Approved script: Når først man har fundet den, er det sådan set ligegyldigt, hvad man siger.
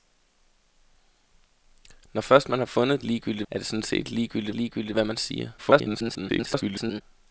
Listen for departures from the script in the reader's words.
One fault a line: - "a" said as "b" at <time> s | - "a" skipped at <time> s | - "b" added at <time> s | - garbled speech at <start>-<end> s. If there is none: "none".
- "den" said as "ligegyldigt" at 3.0 s
- "ligegyldigt" added at 4.5 s
- garbled speech at 5.6-7.0 s